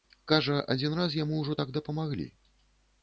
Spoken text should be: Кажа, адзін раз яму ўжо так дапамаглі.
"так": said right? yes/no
yes